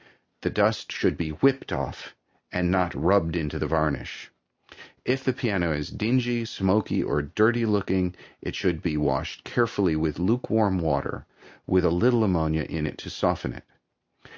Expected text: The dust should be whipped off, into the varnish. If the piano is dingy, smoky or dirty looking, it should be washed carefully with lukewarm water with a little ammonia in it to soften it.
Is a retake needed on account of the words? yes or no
yes